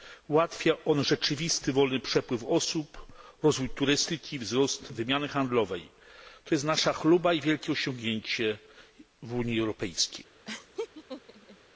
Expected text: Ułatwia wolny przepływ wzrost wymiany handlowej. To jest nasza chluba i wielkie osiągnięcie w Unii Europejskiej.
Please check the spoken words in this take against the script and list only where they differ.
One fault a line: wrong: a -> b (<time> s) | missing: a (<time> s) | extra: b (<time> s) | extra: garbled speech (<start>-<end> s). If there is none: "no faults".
extra: on rzeczywisty (0.8 s)
extra: osób rozwój turystyki (2.4 s)